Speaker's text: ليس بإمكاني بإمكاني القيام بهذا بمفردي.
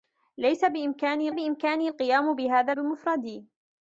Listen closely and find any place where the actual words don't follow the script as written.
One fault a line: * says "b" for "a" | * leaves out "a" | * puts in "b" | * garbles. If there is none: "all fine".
all fine